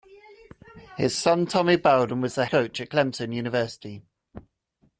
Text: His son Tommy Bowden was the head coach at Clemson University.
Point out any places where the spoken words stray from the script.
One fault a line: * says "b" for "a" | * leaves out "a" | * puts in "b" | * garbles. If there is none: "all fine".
* leaves out "head"